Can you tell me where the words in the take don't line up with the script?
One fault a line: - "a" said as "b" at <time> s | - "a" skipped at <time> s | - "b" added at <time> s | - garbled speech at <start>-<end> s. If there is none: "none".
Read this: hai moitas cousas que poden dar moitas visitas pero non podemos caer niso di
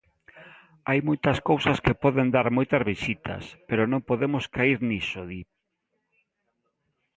none